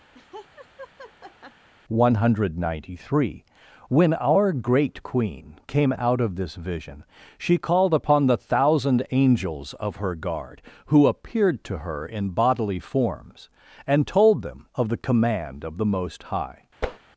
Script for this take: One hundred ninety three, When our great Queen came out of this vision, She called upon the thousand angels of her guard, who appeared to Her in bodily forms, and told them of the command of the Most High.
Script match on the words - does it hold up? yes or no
yes